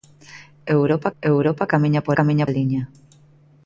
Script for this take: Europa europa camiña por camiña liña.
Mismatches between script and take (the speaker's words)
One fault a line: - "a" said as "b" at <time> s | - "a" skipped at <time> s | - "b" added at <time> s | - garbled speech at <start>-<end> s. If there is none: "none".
none